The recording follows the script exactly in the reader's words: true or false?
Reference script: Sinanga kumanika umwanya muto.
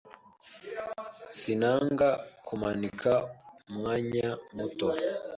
true